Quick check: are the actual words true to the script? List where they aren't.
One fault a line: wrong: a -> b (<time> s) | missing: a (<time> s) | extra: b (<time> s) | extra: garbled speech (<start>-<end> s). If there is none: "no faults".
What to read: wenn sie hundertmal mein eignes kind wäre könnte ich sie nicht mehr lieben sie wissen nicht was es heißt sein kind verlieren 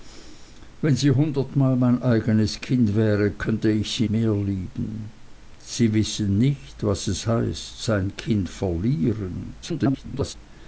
missing: nicht (4.1 s)
extra: garbled speech (9.6-10.3 s)